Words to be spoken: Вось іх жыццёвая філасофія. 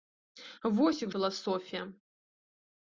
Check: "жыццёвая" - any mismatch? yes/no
yes